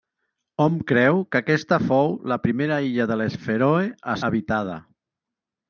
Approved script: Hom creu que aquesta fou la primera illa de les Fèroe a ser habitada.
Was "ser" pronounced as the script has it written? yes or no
no